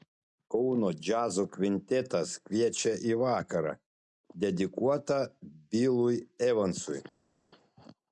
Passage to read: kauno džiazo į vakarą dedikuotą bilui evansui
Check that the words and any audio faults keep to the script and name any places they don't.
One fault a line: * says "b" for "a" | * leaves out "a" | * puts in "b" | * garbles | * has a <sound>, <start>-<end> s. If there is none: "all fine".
* puts in "kvintetas kviečia"